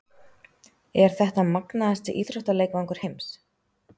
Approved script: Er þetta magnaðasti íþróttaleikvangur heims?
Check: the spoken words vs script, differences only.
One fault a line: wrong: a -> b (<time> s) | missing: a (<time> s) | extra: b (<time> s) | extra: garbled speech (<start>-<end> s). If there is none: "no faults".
no faults